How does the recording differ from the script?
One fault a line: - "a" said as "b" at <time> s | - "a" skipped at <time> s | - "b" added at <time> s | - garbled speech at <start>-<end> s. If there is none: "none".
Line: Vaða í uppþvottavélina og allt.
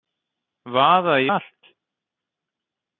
- "uppþvottavélina og" skipped at 1.3 s